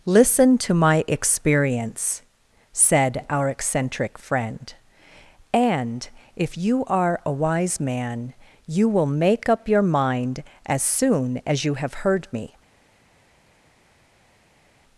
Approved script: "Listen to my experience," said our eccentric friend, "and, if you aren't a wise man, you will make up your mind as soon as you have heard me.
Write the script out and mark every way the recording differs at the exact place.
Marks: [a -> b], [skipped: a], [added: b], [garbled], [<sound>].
"Listen to my experience," said our eccentric friend, "and, if you [aren't -> are] a wise man, you will make up your mind as soon as you have heard me.